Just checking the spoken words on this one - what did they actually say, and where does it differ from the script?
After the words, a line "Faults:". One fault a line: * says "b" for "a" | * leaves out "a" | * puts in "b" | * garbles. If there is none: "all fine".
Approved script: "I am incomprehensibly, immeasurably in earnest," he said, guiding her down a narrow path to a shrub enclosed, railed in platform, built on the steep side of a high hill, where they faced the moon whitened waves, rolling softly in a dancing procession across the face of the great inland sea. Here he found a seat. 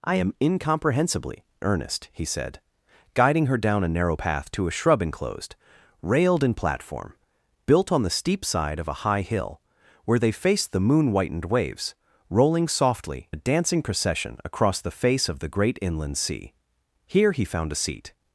"I am incomprehensibly, earnest," he said, guiding her down a narrow path to a shrub enclosed, railed in platform, built on the steep side of a high hill, where they faced the moon whitened waves, rolling softly a dancing procession across the face of the great inland sea. Here he found a seat.
Faults:
* leaves out "immeasurably in"
* leaves out "in"